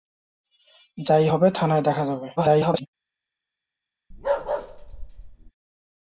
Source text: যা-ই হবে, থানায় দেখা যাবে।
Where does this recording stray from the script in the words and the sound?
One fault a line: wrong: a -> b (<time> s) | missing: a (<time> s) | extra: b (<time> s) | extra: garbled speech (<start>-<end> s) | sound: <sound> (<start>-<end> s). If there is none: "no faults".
extra: garbled speech (2.4-2.9 s)
sound: bark (4.1-5.5 s)